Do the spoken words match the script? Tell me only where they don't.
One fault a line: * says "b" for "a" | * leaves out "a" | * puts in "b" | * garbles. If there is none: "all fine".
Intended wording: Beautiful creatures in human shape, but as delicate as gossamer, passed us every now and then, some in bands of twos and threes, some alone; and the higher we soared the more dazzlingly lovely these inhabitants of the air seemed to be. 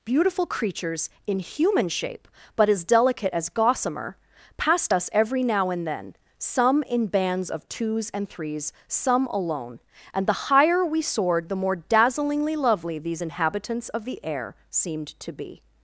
all fine